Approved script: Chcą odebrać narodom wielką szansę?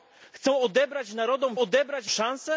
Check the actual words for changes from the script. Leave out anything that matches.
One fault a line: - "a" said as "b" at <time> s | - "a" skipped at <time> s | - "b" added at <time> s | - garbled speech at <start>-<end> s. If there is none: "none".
- "wielką" said as "odebrać" at 1.6 s